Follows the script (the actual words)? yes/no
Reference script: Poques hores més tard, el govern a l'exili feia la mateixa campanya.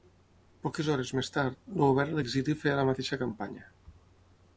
yes